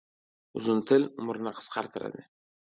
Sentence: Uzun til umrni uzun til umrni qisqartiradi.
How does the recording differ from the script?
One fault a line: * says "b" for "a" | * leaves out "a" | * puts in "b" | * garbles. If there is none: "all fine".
* leaves out "uzun til umrni"